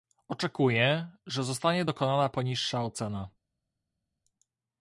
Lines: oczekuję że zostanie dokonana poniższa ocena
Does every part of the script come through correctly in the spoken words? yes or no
yes